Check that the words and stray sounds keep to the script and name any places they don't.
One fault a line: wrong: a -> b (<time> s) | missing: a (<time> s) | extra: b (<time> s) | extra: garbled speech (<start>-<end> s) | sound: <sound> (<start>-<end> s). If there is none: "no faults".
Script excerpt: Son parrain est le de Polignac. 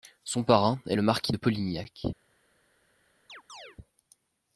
extra: marquis (1.0 s)
sound: chirp (3.3-3.8 s)